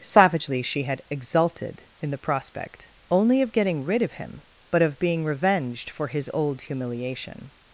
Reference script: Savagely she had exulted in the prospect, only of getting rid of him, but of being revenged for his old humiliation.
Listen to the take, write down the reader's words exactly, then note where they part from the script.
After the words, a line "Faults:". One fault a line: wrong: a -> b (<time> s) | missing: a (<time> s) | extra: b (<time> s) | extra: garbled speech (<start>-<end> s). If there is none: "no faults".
Savagely she had exulted in the prospect, only of getting rid of him, but of being revenged for his old humiliation.
Faults:
no faults